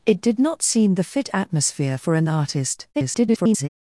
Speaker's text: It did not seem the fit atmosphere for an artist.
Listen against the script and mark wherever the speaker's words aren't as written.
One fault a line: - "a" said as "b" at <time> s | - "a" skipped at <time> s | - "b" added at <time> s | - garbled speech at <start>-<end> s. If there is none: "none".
- garbled speech at 2.9-3.7 s